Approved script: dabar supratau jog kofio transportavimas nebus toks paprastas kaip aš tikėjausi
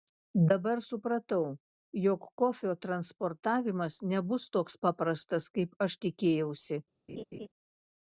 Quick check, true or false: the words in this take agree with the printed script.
true